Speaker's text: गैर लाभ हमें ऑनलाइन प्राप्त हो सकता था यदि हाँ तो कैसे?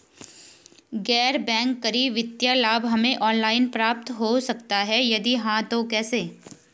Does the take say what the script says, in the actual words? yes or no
no